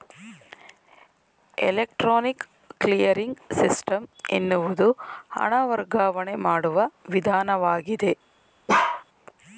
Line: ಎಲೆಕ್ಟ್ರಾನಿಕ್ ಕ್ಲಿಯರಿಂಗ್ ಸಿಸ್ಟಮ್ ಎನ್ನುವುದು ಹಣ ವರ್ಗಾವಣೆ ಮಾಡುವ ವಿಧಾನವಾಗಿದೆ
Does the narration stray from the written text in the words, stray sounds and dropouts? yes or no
yes